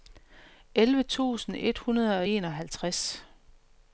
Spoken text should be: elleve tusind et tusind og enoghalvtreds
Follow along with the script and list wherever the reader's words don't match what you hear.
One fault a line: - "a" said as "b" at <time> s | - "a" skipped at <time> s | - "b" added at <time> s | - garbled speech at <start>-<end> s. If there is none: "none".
- "tusind" said as "hundrede" at 1.8 s